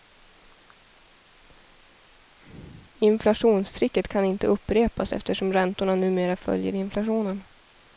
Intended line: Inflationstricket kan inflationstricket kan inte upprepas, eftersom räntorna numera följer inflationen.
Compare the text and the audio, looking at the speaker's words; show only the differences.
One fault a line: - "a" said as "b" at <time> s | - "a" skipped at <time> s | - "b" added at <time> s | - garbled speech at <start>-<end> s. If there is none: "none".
- "inflationstricket kan" skipped at 4.2 s